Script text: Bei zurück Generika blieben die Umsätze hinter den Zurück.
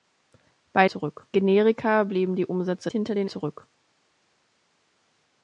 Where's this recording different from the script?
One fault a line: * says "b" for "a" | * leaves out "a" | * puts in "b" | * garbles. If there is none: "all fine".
all fine